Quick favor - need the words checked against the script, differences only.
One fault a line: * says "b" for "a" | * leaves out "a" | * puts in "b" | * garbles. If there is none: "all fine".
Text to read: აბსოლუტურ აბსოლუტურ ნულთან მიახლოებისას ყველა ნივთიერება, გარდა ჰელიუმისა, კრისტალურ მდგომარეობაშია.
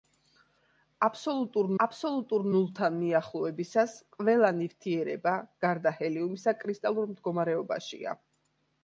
all fine